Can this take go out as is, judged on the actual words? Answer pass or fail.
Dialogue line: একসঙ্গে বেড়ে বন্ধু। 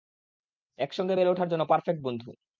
fail